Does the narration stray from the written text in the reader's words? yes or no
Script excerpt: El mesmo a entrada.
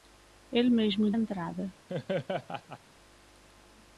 no